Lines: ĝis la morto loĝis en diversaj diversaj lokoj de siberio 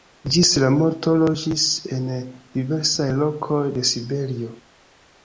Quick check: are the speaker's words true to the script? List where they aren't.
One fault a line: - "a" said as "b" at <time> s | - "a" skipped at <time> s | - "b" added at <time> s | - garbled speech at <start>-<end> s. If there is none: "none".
- "diversaj" skipped at 3.1 s